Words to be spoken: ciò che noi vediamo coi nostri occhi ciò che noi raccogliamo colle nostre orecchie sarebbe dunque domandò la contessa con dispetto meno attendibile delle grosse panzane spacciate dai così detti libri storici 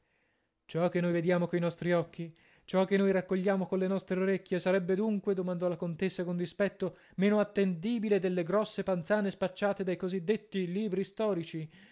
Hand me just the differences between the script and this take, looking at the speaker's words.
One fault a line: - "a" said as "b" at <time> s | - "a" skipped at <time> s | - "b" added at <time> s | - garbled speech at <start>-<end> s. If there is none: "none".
none